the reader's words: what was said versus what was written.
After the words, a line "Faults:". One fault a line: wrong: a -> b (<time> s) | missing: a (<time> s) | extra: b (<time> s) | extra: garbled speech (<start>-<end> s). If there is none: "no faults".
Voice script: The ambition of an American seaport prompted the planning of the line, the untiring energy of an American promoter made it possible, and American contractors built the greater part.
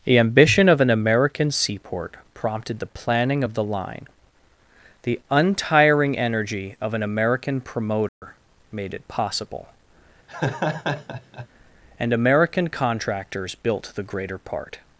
The ambition of an American seaport prompted the planning of the line, the untiring energy of an American promoter made it possible, and American contractors built the greater part.
Faults:
no faults